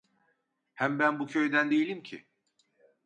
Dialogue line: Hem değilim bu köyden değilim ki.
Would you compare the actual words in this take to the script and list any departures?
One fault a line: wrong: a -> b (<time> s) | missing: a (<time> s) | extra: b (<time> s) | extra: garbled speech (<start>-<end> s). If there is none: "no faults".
wrong: değilim -> ben (1.0 s)